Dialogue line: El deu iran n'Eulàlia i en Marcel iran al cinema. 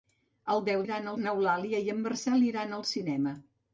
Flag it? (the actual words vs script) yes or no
no